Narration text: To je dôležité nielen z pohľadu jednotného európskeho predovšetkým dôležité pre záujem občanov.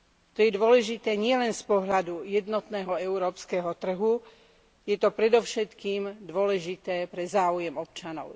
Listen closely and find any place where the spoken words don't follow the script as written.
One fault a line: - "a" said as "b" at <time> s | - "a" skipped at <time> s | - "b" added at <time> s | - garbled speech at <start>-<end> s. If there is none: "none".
- "trhu je to" added at 3.7 s